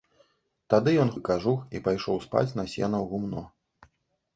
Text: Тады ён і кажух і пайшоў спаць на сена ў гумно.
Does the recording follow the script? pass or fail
pass